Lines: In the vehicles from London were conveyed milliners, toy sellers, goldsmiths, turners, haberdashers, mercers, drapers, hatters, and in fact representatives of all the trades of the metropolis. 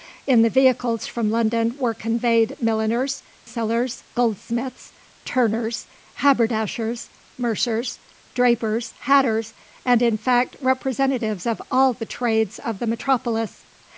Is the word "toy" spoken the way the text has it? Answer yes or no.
no